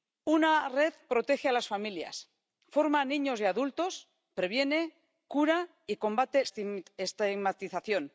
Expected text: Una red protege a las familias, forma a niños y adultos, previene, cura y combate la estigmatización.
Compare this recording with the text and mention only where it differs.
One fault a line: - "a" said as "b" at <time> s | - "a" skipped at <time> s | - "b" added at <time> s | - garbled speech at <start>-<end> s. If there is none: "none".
- "la" skipped at 6.4 s